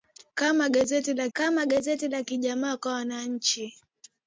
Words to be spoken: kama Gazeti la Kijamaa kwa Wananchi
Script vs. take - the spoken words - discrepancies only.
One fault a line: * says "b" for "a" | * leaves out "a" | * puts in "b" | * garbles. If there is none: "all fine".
* puts in "kama Gazeti la"